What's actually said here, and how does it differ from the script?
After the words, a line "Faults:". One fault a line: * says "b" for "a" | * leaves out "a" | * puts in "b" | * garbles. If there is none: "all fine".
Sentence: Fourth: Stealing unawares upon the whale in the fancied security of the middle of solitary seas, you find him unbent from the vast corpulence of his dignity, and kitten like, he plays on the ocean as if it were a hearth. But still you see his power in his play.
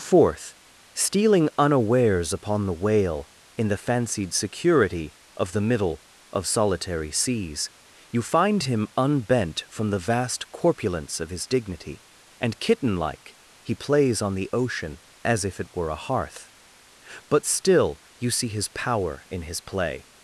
Fourth: Stealing unawares upon the whale in the fancied security of the middle of solitary seas, you find him unbent from the vast corpulence of his dignity, and kitten like, he plays on the ocean as if it were a hearth. But still you see his power in his play.
Faults:
all fine